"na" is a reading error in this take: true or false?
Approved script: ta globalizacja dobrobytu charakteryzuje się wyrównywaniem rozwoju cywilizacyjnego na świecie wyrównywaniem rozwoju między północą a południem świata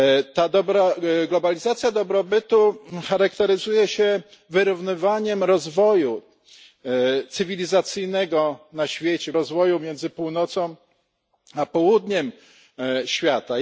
false